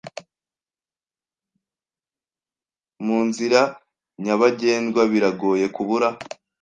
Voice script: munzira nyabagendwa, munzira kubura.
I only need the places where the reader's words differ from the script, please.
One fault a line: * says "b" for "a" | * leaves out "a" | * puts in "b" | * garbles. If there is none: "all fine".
* says "biragoye" for "munzira"